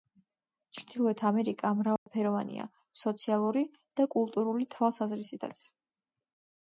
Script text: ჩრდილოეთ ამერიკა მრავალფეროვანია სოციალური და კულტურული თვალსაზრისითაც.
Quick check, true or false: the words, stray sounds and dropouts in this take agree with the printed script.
false